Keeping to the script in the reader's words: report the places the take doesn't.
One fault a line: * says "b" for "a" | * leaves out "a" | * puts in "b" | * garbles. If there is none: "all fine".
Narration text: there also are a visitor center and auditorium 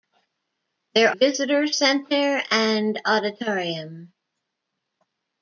* leaves out "also are a"